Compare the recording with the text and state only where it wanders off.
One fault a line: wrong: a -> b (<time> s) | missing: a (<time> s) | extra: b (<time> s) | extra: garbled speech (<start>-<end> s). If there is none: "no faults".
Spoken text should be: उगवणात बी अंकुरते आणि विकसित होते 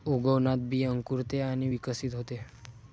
no faults